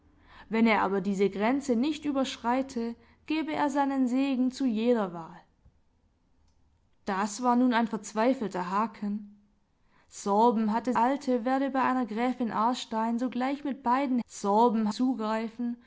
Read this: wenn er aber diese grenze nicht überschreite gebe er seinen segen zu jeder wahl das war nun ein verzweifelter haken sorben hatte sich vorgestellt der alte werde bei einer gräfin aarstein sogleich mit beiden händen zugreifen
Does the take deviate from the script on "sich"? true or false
true